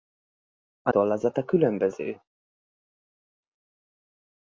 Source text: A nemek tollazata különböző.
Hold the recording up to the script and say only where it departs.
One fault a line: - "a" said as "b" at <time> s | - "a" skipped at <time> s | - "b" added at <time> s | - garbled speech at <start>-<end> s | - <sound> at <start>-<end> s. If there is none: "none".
- "nemek" skipped at 0.9 s